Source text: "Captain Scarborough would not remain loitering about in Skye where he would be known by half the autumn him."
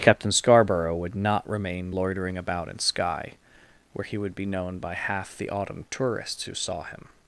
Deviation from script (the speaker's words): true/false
true